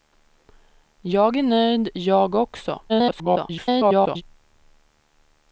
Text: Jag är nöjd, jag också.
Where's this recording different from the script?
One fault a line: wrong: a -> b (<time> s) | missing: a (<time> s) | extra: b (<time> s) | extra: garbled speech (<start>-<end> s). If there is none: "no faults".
extra: garbled speech (2.9-4.2 s)